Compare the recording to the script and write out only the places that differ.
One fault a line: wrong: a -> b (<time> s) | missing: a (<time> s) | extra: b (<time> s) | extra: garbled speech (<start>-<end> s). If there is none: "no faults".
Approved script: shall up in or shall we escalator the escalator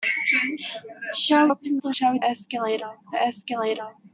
no faults